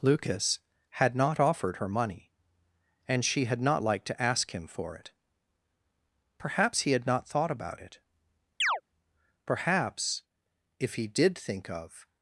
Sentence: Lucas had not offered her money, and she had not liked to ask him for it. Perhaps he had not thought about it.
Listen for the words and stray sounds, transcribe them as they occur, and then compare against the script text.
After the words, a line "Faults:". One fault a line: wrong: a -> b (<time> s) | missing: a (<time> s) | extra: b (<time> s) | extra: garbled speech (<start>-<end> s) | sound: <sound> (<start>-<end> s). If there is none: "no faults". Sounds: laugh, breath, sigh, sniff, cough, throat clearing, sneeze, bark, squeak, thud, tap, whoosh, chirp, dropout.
Lucas had not offered her money, and she had not liked to ask him for it. Perhaps he had not thought about it. Perhaps if he did think of
Faults:
sound: chirp (8.6-8.8 s)
extra: Perhaps if he did think of (9.4 s)